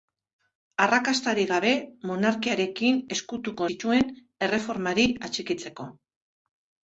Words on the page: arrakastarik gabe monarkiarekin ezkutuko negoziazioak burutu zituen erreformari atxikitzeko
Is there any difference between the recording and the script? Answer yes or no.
yes